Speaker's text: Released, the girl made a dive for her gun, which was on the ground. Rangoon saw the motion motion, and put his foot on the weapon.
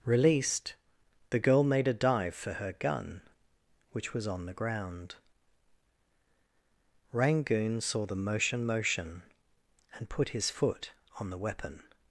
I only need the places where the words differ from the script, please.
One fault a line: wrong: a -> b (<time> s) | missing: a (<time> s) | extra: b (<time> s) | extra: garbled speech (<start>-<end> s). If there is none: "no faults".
no faults